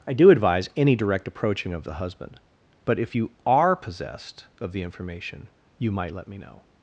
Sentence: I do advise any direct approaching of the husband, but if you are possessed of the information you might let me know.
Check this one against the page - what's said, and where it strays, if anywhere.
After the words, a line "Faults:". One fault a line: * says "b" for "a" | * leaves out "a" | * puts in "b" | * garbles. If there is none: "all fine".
I do advise any direct approaching of the husband, but if you are possessed of the information you might let me know.
Faults:
all fine